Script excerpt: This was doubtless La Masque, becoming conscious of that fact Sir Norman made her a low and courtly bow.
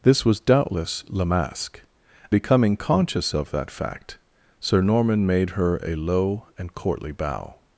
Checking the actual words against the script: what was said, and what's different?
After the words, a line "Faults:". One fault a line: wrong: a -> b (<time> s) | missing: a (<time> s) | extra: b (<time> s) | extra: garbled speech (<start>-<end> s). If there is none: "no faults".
This was doubtless La Masque, becoming conscious of that fact Sir Norman made her a low and courtly bow.
Faults:
no faults